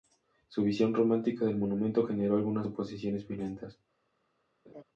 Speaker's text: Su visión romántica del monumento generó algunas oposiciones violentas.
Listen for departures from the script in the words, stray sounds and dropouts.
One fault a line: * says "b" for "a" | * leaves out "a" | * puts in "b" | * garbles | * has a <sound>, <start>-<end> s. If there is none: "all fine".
* has a laugh, 4.7-4.8 s